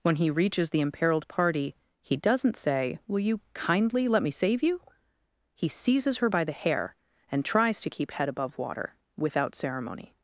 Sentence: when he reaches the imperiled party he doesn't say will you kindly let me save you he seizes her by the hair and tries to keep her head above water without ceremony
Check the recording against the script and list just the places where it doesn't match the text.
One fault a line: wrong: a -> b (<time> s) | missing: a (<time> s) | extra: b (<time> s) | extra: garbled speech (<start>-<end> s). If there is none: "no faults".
missing: her (8.1 s)